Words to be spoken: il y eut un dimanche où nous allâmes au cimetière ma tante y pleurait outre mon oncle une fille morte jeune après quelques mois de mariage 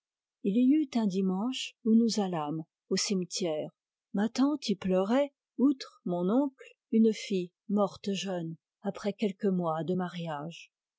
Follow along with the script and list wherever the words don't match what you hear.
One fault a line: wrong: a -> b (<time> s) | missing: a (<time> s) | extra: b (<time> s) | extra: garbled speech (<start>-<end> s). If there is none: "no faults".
no faults